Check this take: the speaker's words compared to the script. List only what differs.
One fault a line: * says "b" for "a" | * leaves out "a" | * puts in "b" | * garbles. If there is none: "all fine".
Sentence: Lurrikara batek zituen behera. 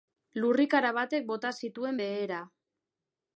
* puts in "bota"